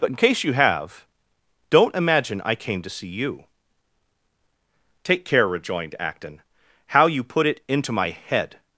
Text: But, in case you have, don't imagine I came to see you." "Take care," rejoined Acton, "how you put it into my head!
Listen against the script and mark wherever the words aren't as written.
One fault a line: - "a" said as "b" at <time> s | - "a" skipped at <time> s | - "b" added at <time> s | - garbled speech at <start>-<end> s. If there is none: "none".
none